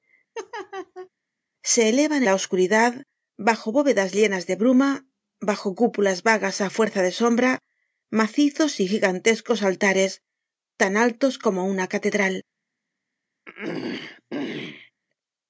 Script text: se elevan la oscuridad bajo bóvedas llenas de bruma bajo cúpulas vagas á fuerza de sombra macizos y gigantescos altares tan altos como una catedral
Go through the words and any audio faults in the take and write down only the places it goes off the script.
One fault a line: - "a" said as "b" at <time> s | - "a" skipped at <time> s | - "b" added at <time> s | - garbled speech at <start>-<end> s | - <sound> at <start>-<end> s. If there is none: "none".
- laugh at 0.3-1.1 s
- throat clearing at 13.5-14.9 s